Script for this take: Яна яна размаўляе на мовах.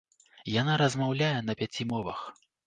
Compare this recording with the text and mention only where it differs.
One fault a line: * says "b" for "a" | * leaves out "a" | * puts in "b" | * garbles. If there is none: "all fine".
* leaves out "яна"
* puts in "пяці"